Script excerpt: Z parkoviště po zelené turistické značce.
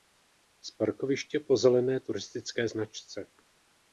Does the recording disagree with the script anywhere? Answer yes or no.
no